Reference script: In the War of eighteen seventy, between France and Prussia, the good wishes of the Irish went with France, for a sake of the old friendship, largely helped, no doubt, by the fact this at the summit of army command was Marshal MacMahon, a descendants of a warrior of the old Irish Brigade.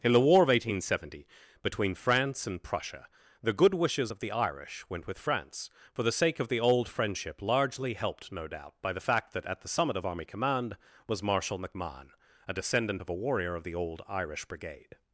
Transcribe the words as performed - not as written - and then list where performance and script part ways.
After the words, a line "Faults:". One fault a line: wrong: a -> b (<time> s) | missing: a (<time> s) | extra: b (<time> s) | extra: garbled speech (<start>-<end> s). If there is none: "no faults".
In the War of eighteen seventy, between France and Prussia, the good wishes of the Irish went with France, for the sake of the old friendship, largely helped, no doubt, by the fact that at the summit of army command was Marshal MacMahon, a descendant of a warrior of the old Irish Brigade.
Faults:
wrong: a -> the (6.0 s)
wrong: this -> that (9.3 s)
wrong: descendants -> descendant (12.5 s)